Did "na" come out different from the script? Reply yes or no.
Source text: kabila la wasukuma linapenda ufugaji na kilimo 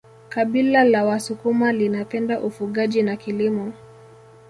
no